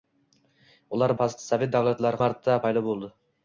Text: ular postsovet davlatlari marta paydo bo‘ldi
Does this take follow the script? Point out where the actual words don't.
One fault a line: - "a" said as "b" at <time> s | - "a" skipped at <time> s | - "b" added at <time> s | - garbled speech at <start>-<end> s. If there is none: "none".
none